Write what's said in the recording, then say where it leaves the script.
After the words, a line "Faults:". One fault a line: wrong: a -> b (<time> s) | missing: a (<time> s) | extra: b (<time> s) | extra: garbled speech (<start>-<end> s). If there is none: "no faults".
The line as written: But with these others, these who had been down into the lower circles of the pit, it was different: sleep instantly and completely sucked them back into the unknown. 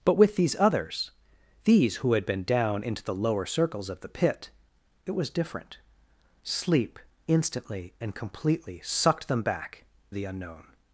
But with these others, these who had been down into the lower circles of the pit, it was different: sleep instantly and completely sucked them back the unknown.
Faults:
missing: into (9.8 s)